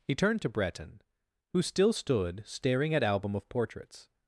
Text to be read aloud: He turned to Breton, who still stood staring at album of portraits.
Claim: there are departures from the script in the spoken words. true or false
false